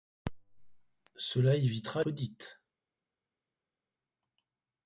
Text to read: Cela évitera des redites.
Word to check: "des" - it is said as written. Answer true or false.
false